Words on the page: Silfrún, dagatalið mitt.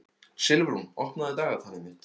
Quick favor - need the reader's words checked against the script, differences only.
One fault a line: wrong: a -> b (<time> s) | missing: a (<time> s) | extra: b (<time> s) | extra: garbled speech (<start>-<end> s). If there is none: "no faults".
extra: opnaðu (1.1 s)